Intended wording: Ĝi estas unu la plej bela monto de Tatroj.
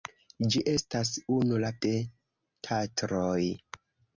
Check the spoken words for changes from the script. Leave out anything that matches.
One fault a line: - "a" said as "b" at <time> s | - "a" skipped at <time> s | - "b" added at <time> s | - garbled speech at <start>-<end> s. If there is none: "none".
- "plej bela monto" skipped at 1.7 s